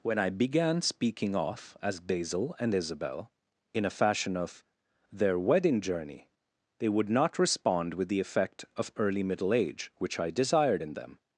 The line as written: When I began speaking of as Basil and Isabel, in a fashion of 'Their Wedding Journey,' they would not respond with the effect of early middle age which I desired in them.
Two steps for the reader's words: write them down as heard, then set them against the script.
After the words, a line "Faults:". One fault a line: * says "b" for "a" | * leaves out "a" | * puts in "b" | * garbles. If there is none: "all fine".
When I began speaking of as Basil and Isabel, in a fashion of 'Their Wedding Journey,' they would not respond with the effect of early middle age which I desired in them.
Faults:
all fine